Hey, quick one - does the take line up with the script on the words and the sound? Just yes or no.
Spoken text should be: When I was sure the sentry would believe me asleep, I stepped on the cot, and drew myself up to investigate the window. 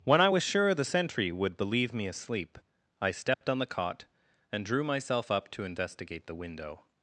no